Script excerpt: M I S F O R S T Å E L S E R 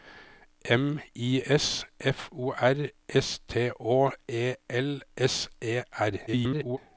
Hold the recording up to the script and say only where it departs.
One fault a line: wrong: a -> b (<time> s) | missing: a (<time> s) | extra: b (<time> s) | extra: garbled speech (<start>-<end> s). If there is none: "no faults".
extra: garbled speech (6.3-6.8 s)